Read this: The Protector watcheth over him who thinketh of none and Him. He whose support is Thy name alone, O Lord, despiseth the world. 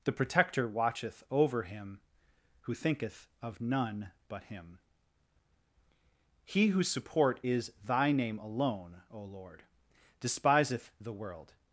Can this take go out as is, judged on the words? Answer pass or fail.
fail